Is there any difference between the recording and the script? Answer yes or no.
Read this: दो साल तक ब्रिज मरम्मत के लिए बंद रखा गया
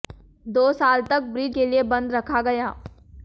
yes